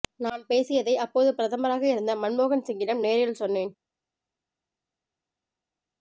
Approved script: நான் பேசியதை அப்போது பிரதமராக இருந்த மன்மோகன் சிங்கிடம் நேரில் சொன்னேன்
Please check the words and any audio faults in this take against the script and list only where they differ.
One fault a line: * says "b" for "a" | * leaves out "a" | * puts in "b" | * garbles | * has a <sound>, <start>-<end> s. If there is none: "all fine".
all fine